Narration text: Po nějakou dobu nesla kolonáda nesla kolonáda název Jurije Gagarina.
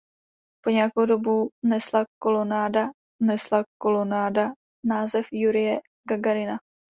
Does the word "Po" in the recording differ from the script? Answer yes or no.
no